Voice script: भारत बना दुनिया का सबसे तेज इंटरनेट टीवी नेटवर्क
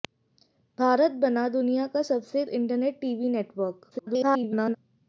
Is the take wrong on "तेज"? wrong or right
wrong